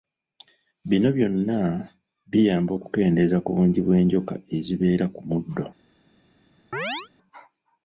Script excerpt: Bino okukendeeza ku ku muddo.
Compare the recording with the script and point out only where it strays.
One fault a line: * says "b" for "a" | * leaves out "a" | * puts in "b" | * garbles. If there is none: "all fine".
* puts in "byonna biyamba"
* puts in "bungi bw'enjoka ezibeera"